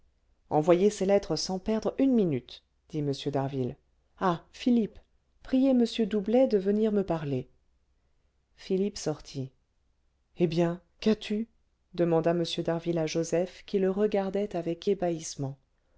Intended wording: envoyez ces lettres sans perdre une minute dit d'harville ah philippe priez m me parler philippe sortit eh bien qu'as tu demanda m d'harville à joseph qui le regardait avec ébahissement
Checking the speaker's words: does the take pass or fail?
fail